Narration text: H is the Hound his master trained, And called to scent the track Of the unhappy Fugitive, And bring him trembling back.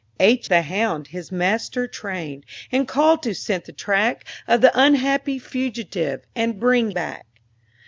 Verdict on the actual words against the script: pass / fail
fail